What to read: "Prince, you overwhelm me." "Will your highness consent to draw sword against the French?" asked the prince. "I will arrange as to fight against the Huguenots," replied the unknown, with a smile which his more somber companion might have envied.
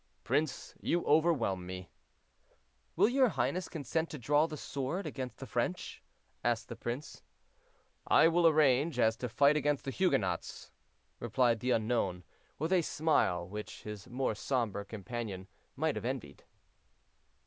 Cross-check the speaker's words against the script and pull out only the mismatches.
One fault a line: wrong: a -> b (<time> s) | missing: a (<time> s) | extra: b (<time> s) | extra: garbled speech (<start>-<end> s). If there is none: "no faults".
extra: the (4.5 s)